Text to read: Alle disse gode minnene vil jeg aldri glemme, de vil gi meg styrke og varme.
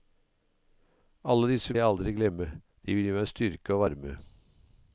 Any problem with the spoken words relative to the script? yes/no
yes